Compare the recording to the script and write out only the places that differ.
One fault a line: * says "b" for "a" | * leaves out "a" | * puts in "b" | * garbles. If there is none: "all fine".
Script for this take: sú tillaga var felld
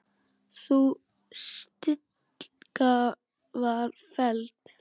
all fine